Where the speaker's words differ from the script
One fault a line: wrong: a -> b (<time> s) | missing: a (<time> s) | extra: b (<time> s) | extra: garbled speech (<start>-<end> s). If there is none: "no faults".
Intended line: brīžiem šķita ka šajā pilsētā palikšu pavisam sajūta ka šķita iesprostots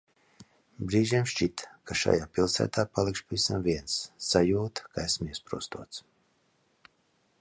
extra: viens (3.7 s)
wrong: šķita -> esmu (5.1 s)